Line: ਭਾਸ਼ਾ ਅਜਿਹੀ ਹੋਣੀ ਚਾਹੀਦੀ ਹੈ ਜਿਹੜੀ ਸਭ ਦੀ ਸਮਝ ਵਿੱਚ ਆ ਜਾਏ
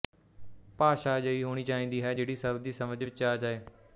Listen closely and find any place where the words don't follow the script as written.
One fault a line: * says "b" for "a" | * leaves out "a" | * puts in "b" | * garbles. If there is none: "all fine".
all fine